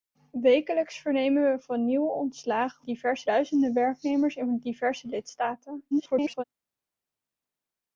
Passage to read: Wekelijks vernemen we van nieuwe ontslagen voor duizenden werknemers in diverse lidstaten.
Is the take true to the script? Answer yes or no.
no